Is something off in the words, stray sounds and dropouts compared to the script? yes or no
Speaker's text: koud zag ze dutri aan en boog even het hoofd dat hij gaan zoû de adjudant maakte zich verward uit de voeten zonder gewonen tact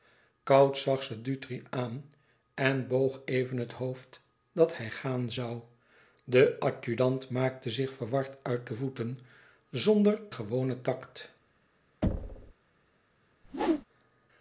yes